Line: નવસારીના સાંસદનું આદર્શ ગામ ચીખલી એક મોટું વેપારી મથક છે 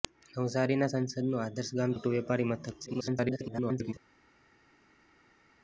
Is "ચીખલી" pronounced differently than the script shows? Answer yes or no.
yes